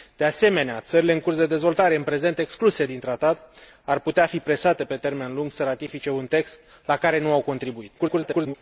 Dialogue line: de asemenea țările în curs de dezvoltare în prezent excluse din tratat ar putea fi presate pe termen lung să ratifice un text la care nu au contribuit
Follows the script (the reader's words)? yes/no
no